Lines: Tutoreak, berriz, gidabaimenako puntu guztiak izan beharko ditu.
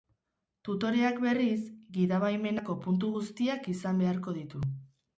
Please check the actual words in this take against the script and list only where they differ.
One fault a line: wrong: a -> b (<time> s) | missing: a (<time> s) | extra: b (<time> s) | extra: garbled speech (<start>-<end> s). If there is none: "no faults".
no faults